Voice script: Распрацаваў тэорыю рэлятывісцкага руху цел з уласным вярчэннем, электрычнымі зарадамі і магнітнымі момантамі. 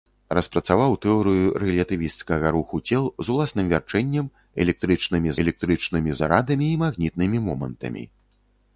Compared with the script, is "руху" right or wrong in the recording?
right